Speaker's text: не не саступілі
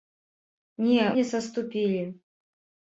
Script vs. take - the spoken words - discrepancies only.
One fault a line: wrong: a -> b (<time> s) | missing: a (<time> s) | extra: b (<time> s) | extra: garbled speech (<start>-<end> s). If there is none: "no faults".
no faults